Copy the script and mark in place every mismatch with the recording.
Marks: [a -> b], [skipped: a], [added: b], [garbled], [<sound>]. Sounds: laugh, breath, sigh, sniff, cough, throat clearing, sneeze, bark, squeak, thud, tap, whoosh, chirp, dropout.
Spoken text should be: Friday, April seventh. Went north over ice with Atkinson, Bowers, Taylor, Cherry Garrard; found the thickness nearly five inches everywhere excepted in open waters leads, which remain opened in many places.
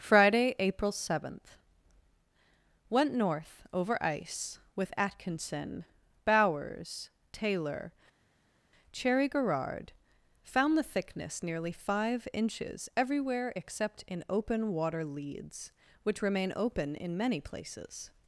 Friday, April seventh. Went north over ice with Atkinson, Bowers, Taylor, Cherry Garrard; found the thickness nearly five inches everywhere [excepted -> except] in open [waters -> water] leads, which remain [opened -> open] in many places.